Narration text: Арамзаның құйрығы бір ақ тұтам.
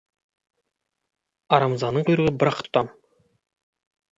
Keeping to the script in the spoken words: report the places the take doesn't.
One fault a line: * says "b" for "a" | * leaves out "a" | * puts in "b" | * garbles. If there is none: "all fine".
all fine